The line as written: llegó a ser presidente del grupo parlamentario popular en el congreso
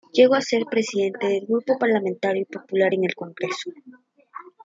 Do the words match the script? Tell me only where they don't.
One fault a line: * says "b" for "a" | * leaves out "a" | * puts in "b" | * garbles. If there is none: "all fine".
all fine